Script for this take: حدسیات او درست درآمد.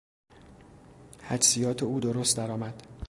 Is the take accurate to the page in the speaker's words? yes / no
yes